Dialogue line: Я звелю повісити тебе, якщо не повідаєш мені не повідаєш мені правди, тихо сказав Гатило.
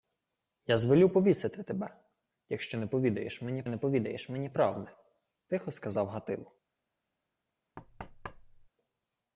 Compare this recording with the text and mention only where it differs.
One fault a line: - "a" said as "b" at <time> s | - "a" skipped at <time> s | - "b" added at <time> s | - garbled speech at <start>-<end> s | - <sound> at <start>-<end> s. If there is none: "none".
- thud at 7.8-8.7 s